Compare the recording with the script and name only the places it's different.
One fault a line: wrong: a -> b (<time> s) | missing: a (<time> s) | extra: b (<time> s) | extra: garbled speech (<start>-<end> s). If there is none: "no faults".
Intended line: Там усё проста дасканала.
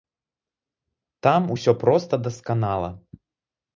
no faults